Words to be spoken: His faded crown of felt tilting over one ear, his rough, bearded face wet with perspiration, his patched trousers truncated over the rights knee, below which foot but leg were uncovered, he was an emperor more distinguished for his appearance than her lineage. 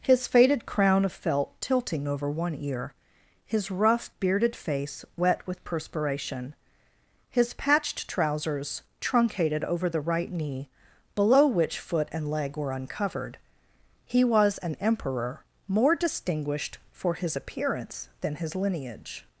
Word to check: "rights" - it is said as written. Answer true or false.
false